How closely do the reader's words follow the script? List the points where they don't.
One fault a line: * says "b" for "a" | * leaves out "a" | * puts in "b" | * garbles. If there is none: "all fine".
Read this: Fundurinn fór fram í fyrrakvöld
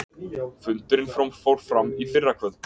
all fine